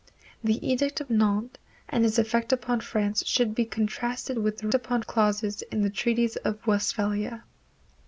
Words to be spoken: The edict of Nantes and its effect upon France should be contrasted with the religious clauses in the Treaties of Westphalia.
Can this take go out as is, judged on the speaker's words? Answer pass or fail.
fail